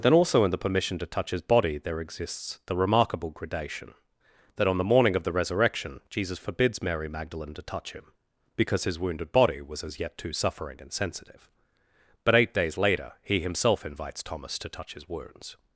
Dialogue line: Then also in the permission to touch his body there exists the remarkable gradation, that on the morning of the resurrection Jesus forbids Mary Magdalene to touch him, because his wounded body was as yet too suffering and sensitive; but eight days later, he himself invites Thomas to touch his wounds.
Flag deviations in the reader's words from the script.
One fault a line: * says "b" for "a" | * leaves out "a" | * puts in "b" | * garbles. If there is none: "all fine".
all fine